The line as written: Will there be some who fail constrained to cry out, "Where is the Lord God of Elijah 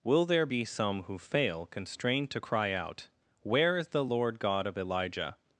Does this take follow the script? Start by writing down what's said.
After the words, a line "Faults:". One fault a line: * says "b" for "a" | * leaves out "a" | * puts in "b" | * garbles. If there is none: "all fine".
Will there be some who fail constrained to cry out, "Where is the Lord God of Elijah
Faults:
all fine